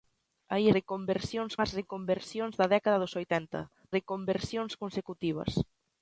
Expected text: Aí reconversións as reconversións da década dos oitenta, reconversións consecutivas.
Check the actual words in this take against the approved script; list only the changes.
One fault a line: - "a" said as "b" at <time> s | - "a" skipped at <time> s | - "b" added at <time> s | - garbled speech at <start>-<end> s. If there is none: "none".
none